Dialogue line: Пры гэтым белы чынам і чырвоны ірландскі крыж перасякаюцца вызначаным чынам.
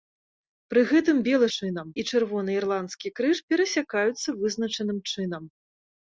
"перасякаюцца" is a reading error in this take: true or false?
false